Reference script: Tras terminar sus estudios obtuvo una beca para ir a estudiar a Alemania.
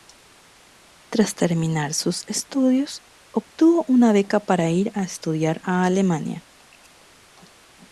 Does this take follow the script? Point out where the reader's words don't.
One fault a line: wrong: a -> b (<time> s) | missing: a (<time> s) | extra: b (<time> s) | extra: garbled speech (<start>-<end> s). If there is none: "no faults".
no faults